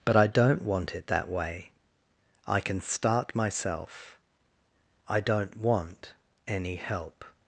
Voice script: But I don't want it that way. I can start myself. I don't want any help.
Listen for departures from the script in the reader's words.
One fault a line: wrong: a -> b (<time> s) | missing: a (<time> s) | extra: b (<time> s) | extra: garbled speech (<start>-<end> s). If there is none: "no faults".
no faults